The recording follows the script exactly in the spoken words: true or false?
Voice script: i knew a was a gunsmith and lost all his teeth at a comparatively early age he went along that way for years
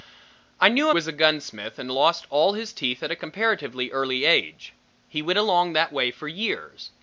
true